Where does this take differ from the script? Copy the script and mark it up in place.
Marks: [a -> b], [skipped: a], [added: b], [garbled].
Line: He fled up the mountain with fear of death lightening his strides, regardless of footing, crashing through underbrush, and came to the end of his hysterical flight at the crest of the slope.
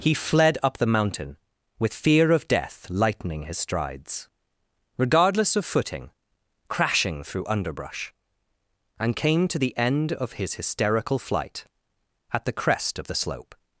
He fled up the mountain with fear of death lightening his strides, regardless of footing, crashing through underbrush, and came to the end of his hysterical flight at the crest of the slope.